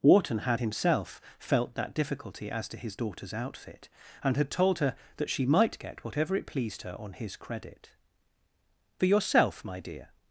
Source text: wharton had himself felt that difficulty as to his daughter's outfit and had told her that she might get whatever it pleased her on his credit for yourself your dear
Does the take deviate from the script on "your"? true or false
true